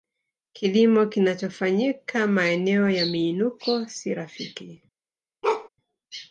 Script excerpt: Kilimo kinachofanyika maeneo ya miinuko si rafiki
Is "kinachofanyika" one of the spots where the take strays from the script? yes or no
no